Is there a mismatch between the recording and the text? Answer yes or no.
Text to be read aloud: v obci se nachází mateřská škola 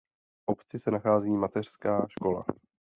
no